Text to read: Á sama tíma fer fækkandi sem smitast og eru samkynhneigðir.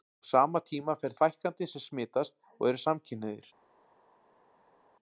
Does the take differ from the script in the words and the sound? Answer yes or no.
no